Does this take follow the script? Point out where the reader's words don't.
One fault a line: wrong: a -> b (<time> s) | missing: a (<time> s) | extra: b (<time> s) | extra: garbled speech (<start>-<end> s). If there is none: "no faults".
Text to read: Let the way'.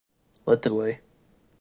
no faults